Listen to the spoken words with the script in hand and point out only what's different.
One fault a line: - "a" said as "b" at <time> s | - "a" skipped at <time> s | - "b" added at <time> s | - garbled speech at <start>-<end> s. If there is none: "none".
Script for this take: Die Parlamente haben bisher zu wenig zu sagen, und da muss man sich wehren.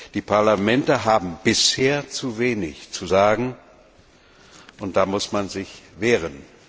none